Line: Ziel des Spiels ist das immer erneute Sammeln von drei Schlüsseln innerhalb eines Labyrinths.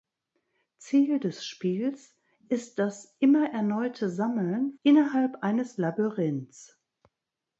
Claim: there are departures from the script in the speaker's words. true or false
true